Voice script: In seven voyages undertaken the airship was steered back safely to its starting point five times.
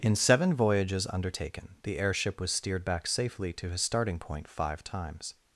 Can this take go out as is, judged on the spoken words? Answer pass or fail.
fail